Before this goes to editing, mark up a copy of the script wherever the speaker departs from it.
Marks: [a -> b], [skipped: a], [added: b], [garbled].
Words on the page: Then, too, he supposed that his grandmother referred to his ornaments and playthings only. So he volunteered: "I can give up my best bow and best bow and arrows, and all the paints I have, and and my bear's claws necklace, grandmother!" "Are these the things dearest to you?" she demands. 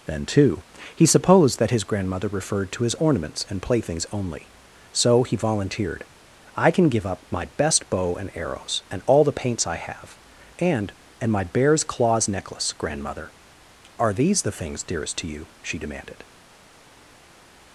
Then, too, he supposed that his grandmother referred to his ornaments and playthings only. So he volunteered: "I can give up my best bow and [skipped: best bow and] arrows, and all the paints I have, and and my bear's claws necklace, grandmother!" "Are these the things dearest to you?" she [demands. -> demanded]